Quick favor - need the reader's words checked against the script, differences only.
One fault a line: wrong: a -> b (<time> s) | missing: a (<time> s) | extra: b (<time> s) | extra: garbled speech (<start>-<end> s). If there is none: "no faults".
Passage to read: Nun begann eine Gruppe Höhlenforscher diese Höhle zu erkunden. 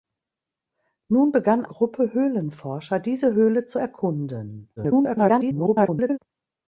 missing: eine (1.6 s)
extra: garbled speech (4.8-6.2 s)